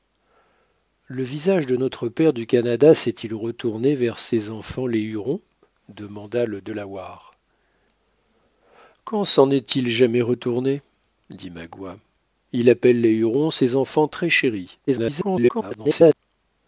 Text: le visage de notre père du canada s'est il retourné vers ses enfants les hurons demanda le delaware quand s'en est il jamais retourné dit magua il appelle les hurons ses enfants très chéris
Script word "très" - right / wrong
right